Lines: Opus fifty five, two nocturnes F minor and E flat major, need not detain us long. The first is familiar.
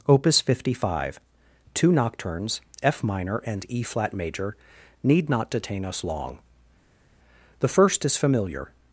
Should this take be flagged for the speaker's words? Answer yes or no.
no